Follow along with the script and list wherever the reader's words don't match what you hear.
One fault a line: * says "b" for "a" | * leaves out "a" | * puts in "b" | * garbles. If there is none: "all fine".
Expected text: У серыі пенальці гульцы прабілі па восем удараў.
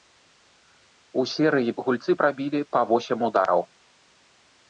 * leaves out "пенальці"